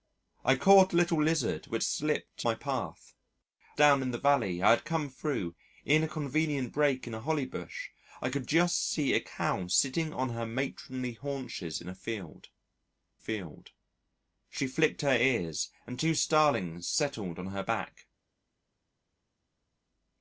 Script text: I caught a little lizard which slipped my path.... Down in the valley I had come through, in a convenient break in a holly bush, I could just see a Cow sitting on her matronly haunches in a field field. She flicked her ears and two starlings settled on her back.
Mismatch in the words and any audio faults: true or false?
false